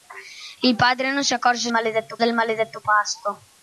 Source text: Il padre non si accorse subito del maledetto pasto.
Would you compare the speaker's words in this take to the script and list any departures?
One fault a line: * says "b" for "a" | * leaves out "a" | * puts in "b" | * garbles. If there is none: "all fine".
* says "maledetto" for "subito"